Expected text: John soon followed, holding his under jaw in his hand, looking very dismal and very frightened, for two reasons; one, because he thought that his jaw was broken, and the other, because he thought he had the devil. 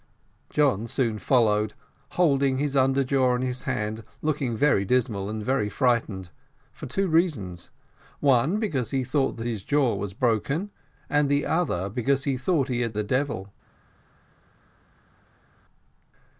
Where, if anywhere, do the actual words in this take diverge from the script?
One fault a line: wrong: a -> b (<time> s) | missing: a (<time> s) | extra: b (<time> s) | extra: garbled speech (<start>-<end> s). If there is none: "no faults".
no faults